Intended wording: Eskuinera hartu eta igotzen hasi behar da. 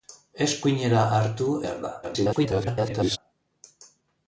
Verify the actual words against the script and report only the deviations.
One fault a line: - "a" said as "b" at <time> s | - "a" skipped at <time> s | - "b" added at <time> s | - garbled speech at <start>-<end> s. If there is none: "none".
- "eta igotzen hasi" skipped at 1.5 s
- garbled speech at 2.0-3.2 s